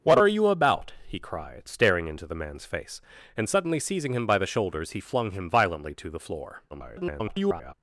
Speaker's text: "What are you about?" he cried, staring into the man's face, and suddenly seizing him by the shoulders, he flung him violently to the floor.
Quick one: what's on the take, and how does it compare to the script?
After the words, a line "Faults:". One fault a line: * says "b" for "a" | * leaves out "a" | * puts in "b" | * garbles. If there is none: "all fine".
"What are you about?" he cried, staring into the man's face, and suddenly seizing him by the shoulders, he flung him violently to the floor. [garbled]
Faults:
* garbles